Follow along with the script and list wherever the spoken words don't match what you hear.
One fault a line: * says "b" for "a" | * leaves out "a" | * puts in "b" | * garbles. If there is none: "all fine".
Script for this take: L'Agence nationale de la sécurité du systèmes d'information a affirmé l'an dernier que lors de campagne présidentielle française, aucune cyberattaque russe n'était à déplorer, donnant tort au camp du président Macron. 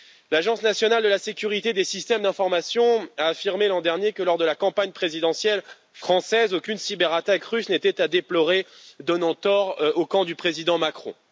* says "des" for "du"
* puts in "la"